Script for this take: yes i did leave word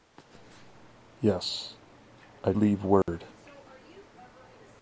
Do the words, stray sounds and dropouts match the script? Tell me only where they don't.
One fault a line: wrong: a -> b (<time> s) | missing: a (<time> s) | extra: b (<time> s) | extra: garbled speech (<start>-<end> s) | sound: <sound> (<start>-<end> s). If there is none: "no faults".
missing: did (2.5 s)
sound: dropout (3.0-3.1 s)